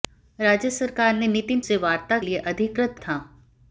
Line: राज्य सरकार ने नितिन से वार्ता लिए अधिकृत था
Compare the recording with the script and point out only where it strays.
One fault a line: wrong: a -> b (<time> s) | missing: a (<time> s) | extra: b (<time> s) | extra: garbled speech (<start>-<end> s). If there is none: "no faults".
no faults